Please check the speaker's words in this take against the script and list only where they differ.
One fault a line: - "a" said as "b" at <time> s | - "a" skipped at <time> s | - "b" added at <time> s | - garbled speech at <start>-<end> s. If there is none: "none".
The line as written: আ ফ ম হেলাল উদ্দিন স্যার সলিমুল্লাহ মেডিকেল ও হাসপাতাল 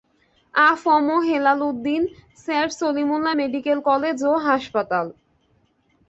- "কলেজ" added at 3.8 s